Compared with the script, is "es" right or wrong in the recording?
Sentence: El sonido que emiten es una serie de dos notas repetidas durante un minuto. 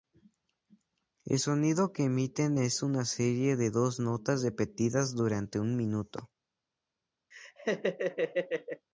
right